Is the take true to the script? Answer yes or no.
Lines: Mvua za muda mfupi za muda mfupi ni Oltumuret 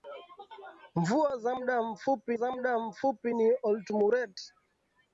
yes